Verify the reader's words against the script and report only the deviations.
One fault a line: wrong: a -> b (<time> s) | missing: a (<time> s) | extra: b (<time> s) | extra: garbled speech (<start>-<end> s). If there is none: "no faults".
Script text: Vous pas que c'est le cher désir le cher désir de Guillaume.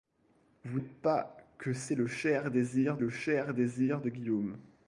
no faults